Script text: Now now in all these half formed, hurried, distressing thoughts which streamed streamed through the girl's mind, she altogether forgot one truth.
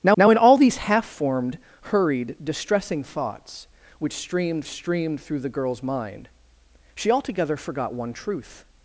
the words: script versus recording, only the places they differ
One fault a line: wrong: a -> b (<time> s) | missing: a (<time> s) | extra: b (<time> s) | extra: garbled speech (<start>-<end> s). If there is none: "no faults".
no faults